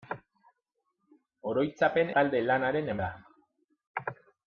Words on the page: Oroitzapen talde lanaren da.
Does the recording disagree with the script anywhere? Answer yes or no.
no